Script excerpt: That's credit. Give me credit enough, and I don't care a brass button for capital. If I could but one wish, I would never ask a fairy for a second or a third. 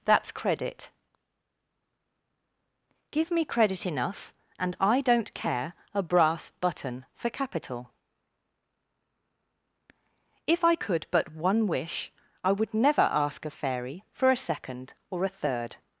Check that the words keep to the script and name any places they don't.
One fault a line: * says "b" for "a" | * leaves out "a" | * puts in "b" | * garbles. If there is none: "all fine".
all fine